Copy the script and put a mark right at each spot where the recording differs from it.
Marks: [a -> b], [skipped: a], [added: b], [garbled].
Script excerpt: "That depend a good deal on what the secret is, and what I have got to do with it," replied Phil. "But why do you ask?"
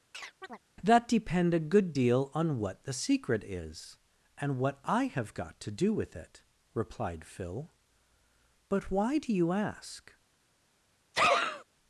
"That depend a good deal on what the secret is, and what I have got to do with it," replied Phil. "But why do you ask?"